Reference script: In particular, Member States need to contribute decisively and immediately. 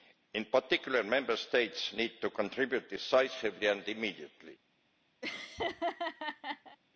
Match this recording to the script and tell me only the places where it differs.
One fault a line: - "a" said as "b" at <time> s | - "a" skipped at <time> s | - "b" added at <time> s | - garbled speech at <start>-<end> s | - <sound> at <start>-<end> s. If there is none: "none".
- laugh at 5.2-6.8 s